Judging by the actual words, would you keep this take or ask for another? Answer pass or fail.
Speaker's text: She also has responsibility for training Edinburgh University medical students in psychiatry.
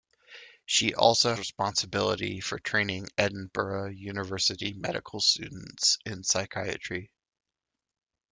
fail